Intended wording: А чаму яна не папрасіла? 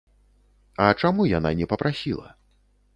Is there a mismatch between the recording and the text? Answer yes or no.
no